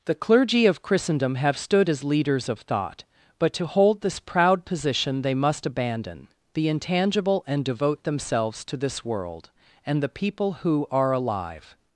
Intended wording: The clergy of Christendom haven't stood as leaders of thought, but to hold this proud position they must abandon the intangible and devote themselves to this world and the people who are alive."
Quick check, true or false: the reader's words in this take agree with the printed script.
false